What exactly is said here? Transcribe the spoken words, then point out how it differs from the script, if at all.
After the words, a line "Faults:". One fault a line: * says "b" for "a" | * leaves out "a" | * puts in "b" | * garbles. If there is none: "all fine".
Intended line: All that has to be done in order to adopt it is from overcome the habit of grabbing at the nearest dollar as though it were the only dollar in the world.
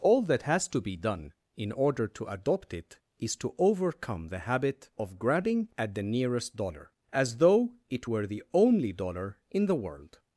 All that has to be done in order to adopt it is to overcome the habit of grabbing at the nearest dollar as though it were the only dollar in the world.
Faults:
* says "to" for "from"